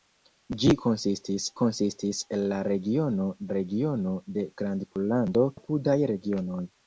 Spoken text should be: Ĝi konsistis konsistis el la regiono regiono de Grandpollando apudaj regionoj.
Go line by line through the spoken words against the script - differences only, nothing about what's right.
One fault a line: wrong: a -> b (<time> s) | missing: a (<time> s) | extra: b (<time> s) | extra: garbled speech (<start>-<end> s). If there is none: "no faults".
no faults